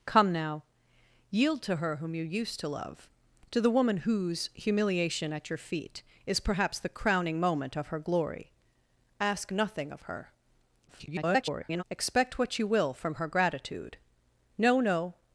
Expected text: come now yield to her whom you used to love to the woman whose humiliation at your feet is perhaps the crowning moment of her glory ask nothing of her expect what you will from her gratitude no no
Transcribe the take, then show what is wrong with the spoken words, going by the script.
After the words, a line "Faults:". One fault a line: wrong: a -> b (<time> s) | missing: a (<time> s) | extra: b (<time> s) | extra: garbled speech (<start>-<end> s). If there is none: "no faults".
come now yield to her whom you used to love to the woman whose humiliation at your feet is perhaps the crowning moment of her glory ask nothing of her [garbled] expect what you will from her gratitude no no
Faults:
extra: garbled speech (10.9-11.8 s)